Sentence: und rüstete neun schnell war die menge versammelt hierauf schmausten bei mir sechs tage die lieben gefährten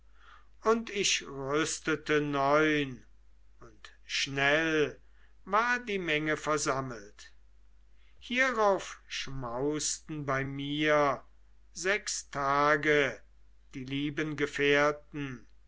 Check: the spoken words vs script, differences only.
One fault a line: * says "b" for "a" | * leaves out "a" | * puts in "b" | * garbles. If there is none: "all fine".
* puts in "ich"
* puts in "und"